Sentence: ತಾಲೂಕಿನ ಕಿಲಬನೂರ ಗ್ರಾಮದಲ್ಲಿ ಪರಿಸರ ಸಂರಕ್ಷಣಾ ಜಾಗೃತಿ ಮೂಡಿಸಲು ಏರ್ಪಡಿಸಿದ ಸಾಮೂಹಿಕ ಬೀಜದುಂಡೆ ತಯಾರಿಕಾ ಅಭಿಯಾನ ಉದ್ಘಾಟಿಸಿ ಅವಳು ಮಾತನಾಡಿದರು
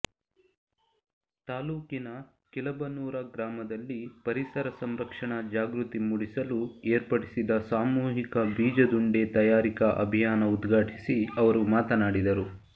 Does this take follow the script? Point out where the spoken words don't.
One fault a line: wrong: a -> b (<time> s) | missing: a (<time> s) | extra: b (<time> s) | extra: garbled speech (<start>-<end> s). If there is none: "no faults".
wrong: ಅವಳು -> ಅವರು (11.4 s)